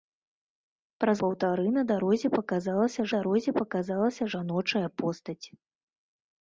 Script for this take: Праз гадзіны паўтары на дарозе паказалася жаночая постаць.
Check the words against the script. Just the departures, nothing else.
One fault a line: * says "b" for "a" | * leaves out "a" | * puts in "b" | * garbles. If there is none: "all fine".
* leaves out "гадзіны"
* puts in "дарозе паказалася"